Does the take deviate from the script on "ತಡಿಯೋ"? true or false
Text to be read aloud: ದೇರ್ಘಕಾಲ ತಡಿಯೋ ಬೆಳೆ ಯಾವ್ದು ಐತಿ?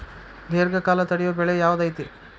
false